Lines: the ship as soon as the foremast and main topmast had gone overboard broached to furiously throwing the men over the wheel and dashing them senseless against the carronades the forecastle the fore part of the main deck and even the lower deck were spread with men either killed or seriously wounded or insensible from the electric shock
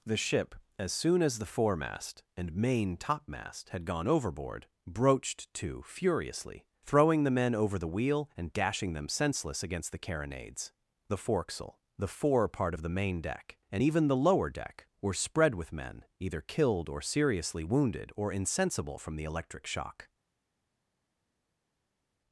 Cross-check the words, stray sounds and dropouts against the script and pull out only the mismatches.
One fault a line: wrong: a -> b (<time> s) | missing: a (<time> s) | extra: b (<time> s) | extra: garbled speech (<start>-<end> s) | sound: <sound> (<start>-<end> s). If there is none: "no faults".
no faults